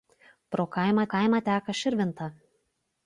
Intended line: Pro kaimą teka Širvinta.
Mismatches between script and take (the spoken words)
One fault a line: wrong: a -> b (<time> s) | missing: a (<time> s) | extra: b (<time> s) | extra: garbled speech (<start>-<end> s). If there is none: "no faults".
extra: kaimą (1.1 s)